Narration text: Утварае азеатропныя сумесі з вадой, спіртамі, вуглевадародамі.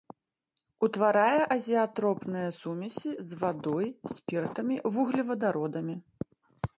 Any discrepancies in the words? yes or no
no